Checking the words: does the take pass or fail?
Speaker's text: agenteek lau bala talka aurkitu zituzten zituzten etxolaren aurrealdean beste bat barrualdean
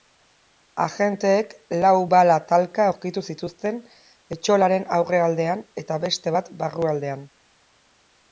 fail